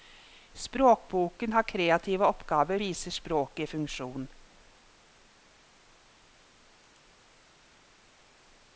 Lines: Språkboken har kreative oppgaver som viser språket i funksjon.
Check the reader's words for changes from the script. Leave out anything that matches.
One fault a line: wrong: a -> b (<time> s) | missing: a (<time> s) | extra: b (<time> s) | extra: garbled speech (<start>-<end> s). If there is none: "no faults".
missing: som (2.8 s)